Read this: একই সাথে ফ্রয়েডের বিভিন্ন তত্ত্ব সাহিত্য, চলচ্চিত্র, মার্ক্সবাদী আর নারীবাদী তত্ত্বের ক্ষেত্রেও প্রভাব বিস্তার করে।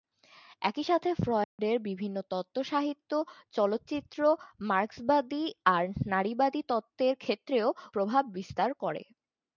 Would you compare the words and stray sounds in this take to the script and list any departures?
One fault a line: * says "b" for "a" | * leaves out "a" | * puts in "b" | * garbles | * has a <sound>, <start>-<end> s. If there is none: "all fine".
* has a dropout, 1.4-1.6 s